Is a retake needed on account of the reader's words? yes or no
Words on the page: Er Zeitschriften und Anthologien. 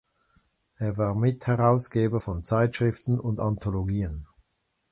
yes